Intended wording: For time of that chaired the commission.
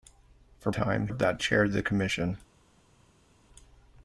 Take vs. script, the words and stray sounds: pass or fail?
pass